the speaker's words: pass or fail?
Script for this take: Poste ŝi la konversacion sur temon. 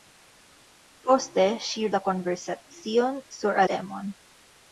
pass